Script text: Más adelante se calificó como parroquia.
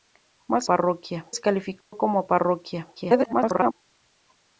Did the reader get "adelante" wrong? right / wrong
wrong